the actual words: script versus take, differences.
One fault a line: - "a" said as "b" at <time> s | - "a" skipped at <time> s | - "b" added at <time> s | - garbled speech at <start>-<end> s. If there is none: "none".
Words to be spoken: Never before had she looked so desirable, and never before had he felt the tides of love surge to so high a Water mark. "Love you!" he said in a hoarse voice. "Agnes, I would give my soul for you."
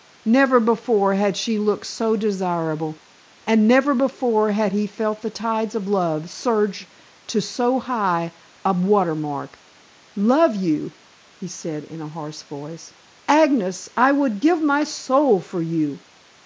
none